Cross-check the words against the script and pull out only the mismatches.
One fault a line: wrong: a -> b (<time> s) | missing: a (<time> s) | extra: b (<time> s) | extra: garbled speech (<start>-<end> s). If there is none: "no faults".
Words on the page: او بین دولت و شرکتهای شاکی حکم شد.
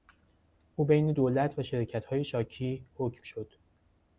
no faults